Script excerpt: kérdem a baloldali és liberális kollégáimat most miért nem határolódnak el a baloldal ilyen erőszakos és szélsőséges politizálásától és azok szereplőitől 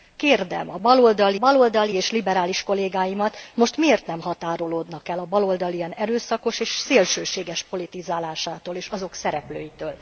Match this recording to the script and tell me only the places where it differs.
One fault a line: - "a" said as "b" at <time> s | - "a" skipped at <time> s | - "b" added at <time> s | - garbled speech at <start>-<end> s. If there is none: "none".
- "baloldali" added at 1.4 s